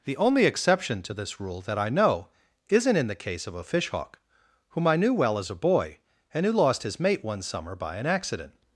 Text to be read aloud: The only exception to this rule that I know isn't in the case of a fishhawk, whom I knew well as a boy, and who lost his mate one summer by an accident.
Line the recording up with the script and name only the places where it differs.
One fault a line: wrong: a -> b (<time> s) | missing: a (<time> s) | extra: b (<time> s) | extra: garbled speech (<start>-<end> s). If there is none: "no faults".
no faults